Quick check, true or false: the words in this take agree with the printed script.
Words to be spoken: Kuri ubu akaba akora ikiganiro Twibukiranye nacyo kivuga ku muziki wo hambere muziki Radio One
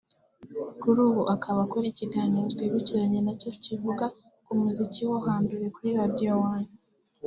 false